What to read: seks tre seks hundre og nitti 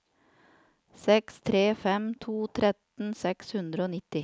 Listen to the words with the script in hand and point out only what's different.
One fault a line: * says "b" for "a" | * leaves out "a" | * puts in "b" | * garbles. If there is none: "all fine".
* puts in "fem to tretten"